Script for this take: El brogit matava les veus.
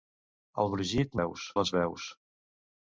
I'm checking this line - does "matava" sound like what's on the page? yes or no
no